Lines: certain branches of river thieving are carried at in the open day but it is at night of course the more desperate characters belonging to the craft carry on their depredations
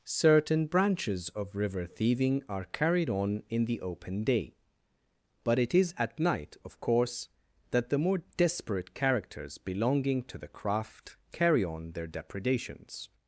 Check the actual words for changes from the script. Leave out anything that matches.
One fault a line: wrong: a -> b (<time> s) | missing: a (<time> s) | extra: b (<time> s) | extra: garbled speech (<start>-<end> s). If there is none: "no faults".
wrong: at -> on (3.1 s)
extra: that (7.7 s)